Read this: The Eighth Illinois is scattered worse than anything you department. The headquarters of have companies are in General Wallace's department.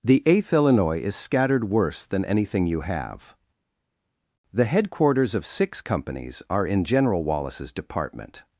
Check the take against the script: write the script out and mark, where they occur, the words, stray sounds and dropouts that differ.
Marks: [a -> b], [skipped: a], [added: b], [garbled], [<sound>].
The Eighth Illinois is scattered worse than anything you [department. -> have] The headquarters of [have -> six] companies are in General Wallace's department.